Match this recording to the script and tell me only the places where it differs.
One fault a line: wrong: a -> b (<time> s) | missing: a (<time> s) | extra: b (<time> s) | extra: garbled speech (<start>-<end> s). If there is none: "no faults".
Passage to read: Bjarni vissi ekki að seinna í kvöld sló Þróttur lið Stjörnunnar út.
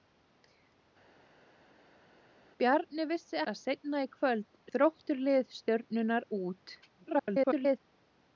missing: ekki (3.4 s)
missing: sló (4.5 s)
extra: garbled speech (6.8-7.8 s)